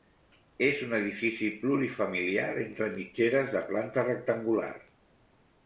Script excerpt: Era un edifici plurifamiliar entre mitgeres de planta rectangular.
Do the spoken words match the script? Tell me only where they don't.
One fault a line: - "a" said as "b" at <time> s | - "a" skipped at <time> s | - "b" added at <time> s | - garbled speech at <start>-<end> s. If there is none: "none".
- "Era" said as "És" at 0.7 s